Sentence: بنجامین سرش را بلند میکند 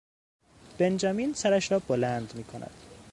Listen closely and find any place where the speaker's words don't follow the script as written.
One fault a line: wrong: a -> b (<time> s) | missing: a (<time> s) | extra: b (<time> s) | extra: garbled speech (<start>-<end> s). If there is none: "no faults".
no faults